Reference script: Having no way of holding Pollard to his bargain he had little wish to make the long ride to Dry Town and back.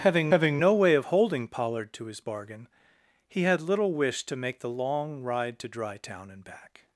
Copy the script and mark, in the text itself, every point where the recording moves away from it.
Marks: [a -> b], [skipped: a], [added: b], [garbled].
Having [added: having] no way of holding Pollard to his bargain he had little wish to make the long ride to Dry Town and back.